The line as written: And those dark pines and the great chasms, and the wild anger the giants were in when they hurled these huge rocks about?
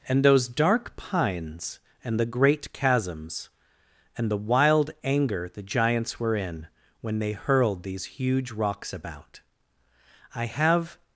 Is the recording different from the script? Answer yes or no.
yes